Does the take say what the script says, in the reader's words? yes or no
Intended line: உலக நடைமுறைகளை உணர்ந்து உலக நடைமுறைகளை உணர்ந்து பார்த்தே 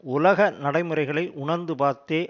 no